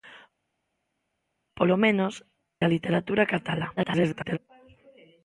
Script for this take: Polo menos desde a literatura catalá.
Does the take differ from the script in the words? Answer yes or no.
yes